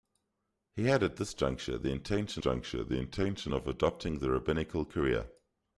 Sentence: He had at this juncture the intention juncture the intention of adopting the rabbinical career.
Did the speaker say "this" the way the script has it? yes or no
yes